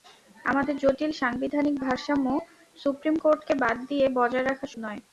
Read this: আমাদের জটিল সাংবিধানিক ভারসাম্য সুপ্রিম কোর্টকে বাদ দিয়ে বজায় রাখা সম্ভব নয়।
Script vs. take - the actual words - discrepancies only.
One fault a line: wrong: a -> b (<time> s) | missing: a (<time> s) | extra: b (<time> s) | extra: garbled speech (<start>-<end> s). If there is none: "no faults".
missing: সম্ভব (4.7 s)